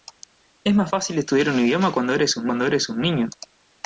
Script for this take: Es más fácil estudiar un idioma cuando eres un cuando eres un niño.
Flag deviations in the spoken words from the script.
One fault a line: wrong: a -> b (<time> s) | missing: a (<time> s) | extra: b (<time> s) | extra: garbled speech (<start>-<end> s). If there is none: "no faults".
no faults